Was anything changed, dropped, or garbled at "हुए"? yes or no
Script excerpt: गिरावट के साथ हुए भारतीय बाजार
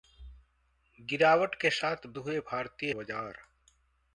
no